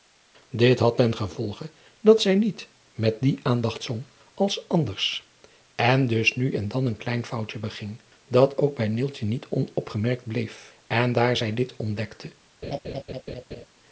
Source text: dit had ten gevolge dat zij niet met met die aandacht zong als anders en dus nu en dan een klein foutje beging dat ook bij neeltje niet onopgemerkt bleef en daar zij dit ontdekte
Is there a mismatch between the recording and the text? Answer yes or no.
yes